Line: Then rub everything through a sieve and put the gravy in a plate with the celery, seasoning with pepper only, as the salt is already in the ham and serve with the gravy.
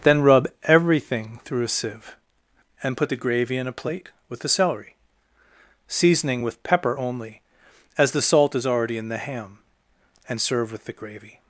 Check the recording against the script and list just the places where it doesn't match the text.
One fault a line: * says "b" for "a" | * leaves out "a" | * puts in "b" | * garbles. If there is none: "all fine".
all fine